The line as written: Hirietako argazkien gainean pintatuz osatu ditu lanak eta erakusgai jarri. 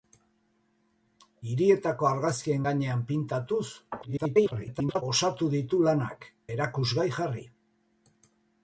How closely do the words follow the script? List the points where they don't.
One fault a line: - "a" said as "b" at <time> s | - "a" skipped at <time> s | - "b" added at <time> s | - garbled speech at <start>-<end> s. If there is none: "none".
- garbled speech at 4.0-5.0 s
- "eta" skipped at 6.3 s